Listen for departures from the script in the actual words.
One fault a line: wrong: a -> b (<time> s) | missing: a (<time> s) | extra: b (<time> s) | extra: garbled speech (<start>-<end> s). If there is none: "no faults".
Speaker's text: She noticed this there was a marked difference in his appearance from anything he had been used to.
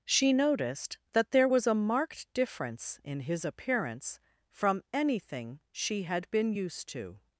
wrong: this -> that (1.1 s)
wrong: he -> she (5.7 s)